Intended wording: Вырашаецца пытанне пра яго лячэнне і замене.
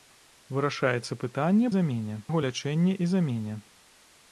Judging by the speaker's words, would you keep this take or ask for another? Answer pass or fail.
fail